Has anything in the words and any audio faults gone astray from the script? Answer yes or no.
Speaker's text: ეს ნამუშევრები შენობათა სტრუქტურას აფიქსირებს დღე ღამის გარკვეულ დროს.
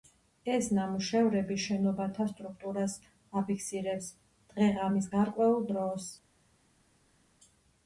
no